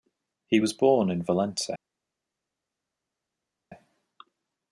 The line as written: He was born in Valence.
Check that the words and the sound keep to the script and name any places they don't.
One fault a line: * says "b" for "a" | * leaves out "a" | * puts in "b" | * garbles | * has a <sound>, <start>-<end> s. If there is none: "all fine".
all fine